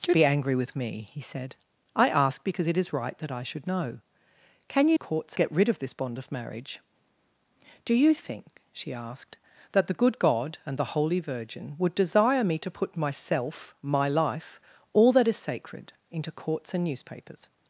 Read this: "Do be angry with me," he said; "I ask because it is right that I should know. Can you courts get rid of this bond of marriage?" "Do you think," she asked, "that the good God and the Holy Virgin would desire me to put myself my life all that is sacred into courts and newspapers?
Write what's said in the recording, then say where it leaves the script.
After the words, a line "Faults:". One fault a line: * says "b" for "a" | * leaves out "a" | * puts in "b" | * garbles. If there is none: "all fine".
"Do be angry with me," he said; "I ask because it is right that I should know. Can you courts get rid of this bond of marriage?" "Do you think," she asked, "that the good God and the Holy Virgin would desire me to put myself my life all that is sacred into courts and newspapers?
Faults:
all fine